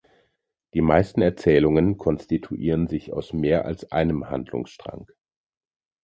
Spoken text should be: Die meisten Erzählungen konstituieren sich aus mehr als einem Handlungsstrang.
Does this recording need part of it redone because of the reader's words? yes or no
no